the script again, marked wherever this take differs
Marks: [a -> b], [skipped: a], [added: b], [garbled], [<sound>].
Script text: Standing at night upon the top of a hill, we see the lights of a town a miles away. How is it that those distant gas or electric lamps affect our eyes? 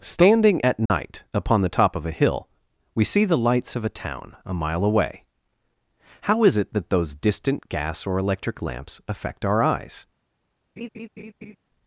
Standing at night [dropout] upon the top of a hill, we see the lights of a town a [miles -> mile] away. How is it that those distant gas or electric lamps affect our eyes? [laugh]